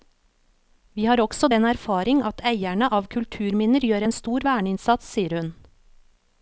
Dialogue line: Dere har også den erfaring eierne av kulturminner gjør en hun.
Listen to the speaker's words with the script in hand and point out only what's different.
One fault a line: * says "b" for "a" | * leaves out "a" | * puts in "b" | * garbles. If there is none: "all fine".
* says "Vi" for "Dere"
* puts in "at"
* puts in "stor verneinnsats sier"